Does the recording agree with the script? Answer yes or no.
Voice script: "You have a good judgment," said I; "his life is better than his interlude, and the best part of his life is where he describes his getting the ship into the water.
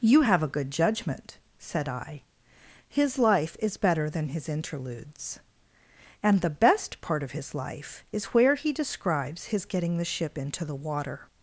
no